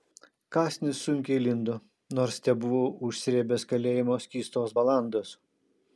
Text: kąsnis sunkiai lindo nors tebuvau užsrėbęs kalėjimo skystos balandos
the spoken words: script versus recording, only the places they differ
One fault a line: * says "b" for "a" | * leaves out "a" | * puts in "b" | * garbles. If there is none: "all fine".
all fine